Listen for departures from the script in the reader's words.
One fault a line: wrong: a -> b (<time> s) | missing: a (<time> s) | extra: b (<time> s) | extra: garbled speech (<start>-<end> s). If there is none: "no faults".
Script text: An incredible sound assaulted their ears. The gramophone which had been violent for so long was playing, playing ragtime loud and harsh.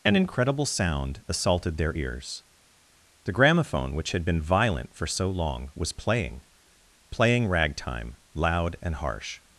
no faults